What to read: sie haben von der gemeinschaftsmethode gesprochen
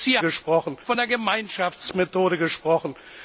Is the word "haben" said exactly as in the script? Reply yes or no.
no